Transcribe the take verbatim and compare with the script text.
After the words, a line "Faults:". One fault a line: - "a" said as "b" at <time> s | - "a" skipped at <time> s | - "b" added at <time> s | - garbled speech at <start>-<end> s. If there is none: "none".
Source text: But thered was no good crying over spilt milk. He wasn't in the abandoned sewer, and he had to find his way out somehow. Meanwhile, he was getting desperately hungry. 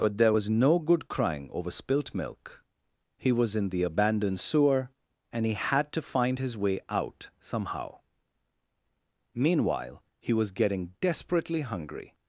But there was no good crying over spilt milk. He was in the abandoned sewer, and he had to find his way out somehow. Meanwhile, he was getting desperately hungry.
Faults:
- "thered" said as "there" at 0.2 s
- "wasn't" said as "was" at 3.3 s